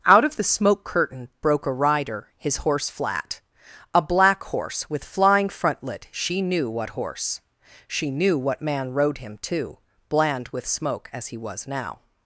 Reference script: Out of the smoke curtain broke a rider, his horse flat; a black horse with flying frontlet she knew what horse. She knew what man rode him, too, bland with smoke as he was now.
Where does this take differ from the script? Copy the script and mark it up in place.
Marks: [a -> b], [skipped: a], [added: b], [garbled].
Out of the smoke curtain broke a rider, his horse flat; a black horse with flying frontlet she knew what horse. She knew what man rode him, too, bland with smoke as he was now.